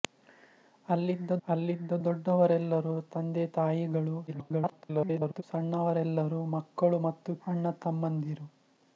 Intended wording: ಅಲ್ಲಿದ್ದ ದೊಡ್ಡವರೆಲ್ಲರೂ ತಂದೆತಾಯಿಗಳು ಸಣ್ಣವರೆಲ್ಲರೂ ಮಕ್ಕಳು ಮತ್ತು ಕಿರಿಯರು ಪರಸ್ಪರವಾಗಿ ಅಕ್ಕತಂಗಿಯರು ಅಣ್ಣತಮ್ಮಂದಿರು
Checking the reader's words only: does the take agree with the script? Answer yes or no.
no